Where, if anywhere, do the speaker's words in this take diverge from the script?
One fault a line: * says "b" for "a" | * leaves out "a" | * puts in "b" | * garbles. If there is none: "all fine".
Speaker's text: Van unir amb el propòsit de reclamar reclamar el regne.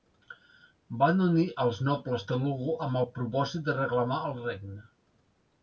* puts in "als nobles Telugu"
* leaves out "reclamar"